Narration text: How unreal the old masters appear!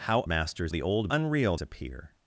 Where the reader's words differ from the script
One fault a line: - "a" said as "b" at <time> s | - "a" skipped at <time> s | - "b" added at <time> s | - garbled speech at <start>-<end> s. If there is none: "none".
- "unreal" said as "masters" at 0.3 s
- "masters" said as "unreal" at 1.1 s